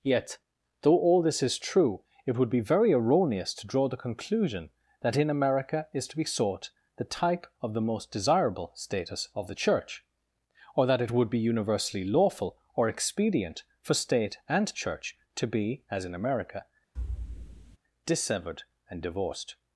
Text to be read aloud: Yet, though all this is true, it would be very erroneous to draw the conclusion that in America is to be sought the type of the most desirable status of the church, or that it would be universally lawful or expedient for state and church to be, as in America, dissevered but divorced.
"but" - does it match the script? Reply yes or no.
no